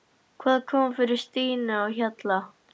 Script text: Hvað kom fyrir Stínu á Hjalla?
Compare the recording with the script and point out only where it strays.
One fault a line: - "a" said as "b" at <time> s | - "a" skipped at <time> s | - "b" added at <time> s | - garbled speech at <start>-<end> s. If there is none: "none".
none